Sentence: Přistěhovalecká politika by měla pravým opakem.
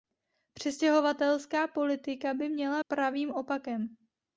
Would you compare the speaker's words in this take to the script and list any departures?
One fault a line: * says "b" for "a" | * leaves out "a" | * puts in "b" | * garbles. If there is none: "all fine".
all fine